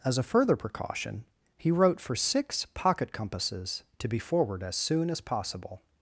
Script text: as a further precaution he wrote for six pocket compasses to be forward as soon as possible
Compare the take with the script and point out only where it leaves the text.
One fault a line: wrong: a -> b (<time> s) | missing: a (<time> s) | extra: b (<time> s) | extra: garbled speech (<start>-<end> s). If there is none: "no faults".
no faults